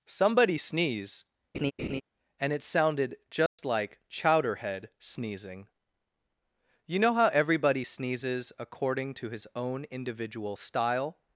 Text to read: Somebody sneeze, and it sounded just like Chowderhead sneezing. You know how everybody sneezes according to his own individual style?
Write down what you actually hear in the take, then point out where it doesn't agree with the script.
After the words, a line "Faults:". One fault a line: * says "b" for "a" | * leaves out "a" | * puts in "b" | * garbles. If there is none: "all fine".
Somebody sneeze, and it sounded just like Chowderhead sneezing. You know how everybody sneezes according to his own individual style?
Faults:
all fine